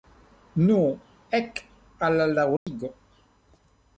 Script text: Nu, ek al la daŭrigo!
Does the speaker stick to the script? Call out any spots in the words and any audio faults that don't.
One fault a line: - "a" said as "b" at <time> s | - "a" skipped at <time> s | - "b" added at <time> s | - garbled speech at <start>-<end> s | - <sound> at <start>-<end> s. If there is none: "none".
- dropout at 2.6-2.7 s